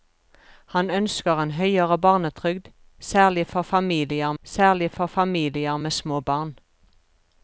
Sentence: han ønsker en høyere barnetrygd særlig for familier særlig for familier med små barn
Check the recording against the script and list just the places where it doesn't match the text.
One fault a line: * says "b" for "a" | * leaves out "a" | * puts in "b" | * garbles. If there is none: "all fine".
all fine